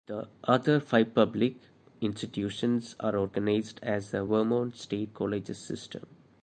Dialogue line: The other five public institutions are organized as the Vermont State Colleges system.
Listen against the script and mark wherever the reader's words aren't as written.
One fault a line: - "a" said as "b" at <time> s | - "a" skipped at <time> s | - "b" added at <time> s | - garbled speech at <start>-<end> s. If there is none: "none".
none